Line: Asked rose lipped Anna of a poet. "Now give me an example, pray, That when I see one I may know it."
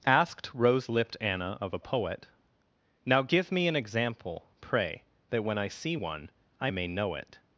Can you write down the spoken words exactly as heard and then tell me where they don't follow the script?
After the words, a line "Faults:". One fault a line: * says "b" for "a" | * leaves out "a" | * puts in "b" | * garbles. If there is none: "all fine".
Asked rose lipped Anna of a poet. "Now give me an example, pray, That when I see one I may know it."
Faults:
all fine